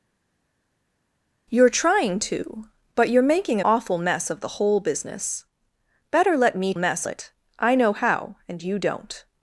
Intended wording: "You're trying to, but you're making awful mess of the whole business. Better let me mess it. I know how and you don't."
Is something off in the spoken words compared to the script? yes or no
no